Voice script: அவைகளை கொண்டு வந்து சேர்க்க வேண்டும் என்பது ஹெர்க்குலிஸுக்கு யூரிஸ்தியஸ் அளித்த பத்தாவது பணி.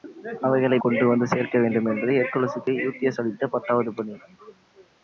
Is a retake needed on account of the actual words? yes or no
no